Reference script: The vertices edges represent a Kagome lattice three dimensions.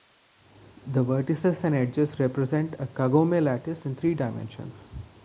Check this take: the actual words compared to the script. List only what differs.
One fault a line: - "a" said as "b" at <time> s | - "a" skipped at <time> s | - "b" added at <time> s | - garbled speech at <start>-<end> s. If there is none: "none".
- "and" added at 1.6 s
- "in" added at 3.9 s